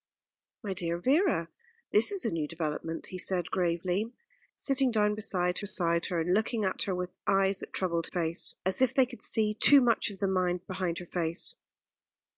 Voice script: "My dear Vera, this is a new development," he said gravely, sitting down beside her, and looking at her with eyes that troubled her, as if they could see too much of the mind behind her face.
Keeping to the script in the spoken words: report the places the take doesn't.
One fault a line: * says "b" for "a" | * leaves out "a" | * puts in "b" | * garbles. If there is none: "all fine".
* puts in "beside"
* says "face" for "her"